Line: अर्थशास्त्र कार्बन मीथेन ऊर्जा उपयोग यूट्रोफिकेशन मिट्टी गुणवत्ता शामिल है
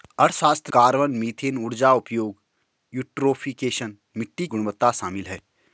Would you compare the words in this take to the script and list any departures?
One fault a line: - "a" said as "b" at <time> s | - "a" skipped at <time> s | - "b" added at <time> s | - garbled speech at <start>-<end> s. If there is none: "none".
none